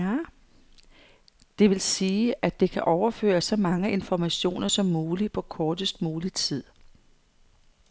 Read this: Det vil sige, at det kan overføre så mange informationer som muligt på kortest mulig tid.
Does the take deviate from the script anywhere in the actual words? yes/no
no